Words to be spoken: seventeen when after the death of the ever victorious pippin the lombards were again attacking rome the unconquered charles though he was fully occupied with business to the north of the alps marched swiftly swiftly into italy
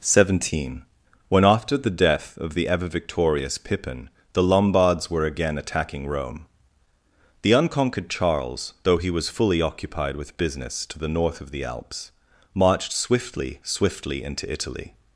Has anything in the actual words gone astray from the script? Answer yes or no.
no